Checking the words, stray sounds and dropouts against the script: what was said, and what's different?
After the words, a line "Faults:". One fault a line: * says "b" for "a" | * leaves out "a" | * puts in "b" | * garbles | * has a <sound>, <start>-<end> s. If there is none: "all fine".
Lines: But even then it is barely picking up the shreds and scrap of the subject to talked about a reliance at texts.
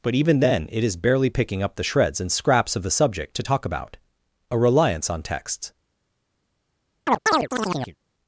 But even then it is barely picking up the shreds and scraps of the subject to talk about a reliance on texts.
Faults:
* says "scraps" for "scrap"
* says "talk" for "talked"
* says "on" for "at"
* has a chirp, 7.1-8.0 s